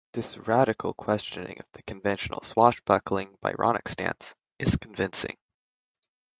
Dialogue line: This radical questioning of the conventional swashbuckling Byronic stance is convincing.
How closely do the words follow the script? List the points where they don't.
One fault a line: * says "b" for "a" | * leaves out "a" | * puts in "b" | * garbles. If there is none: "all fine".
all fine